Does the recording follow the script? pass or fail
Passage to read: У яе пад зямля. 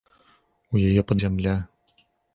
pass